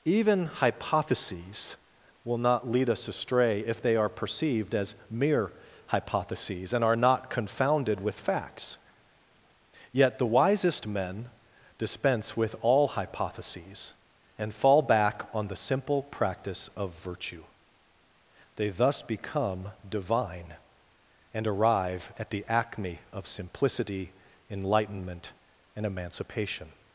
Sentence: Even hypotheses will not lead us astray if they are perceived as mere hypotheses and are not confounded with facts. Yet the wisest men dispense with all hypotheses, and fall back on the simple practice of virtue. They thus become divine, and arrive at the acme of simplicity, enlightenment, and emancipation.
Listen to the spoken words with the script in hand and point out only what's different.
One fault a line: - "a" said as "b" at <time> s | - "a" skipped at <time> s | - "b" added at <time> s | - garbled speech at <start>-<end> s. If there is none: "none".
none